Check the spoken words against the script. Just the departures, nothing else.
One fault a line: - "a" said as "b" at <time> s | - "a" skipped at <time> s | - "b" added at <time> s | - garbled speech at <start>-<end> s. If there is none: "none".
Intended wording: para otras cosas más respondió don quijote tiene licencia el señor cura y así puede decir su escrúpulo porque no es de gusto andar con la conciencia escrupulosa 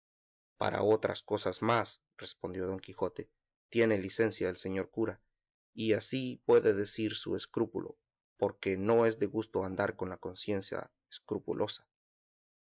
none